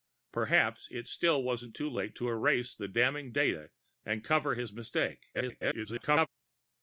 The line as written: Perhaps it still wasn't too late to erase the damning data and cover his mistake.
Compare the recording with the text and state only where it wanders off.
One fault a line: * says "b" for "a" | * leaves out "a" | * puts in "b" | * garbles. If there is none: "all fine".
* garbles